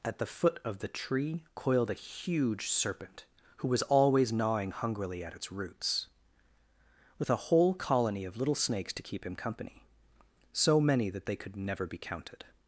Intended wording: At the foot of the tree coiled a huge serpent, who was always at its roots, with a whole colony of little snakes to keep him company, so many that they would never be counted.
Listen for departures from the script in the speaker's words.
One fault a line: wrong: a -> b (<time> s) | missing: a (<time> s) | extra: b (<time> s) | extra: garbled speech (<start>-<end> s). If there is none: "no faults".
extra: gnawing hungrily (4.3 s)
wrong: would -> could (11.3 s)